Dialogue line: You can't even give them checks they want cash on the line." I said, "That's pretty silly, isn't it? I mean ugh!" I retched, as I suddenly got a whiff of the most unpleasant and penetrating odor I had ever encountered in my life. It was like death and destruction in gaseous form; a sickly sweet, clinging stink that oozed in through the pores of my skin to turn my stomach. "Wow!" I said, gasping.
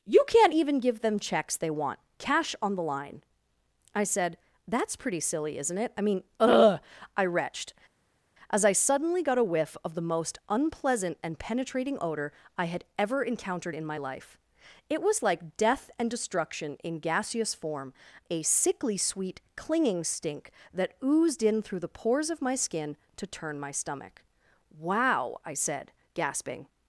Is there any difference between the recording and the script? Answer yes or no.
no